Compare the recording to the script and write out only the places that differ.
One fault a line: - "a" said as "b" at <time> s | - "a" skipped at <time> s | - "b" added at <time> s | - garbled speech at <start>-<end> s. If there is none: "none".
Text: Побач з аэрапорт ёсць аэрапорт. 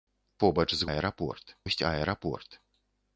none